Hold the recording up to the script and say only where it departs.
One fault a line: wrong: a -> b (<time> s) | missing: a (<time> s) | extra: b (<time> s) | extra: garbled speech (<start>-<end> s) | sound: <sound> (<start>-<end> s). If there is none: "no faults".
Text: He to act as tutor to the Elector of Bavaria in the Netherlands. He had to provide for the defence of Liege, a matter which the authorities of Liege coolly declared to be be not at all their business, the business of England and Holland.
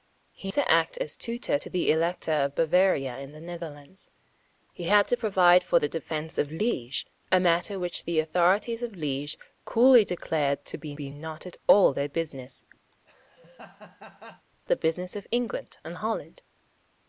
sound: laugh (12.9-14.5 s)